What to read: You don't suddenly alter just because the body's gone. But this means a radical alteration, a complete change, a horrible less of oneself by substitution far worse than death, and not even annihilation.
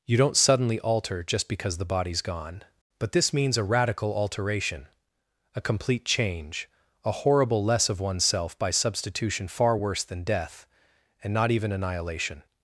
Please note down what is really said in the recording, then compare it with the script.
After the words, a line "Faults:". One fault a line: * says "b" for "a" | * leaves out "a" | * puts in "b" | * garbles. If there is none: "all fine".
You don't suddenly alter just because the body's gone. But this means a radical alteration, a complete change, a horrible less of oneself by substitution far worse than death, and not even annihilation.
Faults:
all fine